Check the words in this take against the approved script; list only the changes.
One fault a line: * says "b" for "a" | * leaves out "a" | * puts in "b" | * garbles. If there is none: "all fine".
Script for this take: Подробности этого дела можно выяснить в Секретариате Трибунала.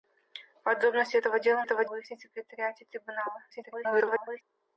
* says "этого" for "можно"
* garbles